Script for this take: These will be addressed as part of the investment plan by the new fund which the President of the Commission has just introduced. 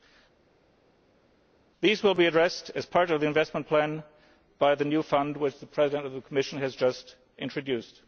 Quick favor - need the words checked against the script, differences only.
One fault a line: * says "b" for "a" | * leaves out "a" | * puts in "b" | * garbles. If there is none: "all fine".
all fine